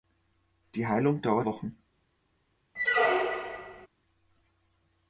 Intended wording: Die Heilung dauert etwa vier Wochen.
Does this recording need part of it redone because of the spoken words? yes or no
yes